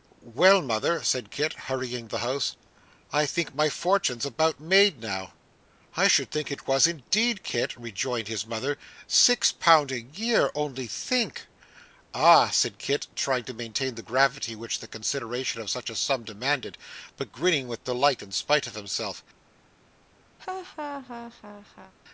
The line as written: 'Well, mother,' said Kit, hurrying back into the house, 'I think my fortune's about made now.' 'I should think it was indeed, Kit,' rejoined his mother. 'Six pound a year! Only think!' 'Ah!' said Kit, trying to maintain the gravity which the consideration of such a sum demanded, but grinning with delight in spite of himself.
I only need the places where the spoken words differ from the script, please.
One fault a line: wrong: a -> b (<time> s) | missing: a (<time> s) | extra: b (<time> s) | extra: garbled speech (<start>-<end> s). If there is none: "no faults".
missing: back into (2.1 s)